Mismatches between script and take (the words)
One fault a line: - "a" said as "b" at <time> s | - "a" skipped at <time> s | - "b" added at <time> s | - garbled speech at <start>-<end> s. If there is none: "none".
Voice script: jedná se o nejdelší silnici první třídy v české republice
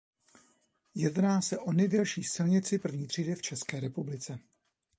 none